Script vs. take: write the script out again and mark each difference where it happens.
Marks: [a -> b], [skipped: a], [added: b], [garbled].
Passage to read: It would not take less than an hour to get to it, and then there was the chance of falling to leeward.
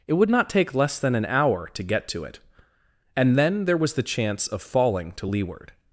It would not take less than an hour to get to it, and then there was the chance of falling to leeward.